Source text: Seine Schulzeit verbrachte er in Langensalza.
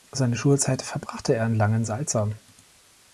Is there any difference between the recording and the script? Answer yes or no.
no